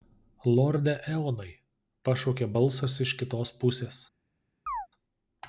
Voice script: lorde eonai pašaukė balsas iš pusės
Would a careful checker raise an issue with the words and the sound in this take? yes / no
yes